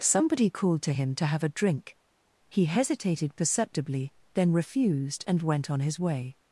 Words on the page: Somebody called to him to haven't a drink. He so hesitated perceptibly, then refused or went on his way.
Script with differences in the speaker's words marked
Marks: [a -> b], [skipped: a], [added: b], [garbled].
Somebody called to him to [haven't -> have] a drink. He [skipped: so] hesitated perceptibly, then refused [or -> and] went on his way.